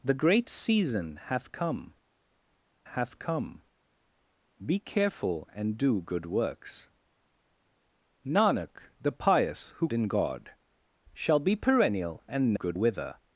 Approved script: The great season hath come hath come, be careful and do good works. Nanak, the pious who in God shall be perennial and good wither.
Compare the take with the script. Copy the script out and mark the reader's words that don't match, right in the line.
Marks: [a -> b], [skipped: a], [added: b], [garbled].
The great season hath come hath come, be careful and do good works. Nanak, the pious who in God shall be perennial and good wither.